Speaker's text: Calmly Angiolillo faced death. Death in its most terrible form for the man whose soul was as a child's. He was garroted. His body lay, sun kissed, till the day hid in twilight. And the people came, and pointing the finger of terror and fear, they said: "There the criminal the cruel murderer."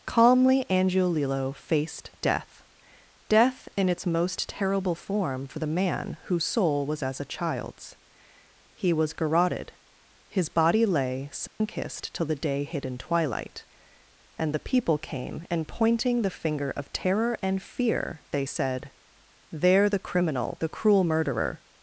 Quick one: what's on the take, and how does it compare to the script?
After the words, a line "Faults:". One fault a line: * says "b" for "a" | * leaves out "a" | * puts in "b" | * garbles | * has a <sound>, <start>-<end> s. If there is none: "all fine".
Calmly Angiolillo faced death. Death in its most terrible form for the man whose soul was as a child's. He was garroted. His body lay, sun kissed, till the day hid in twilight. And the people came, and pointing the finger of terror and fear, they said: "There the criminal the cruel murderer."
Faults:
* has a dropout, 11.5-11.6 s